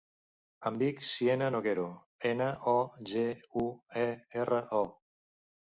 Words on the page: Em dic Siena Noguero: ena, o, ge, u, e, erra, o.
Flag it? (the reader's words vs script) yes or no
no